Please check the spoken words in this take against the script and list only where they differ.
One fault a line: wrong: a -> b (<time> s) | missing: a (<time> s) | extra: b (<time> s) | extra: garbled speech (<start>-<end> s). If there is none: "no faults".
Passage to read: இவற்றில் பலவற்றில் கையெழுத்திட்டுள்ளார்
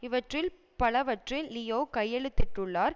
extra: லியோ (1.5 s)